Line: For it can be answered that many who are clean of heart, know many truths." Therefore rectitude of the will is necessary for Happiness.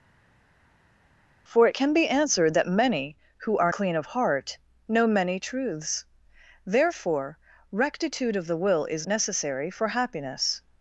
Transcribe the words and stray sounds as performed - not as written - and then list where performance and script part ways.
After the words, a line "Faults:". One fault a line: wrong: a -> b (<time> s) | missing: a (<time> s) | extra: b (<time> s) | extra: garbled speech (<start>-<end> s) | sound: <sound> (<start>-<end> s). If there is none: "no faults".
For it can be answered that many who are clean of heart, know many truths." Therefore rectitude of the will is necessary for Happiness.
Faults:
no faults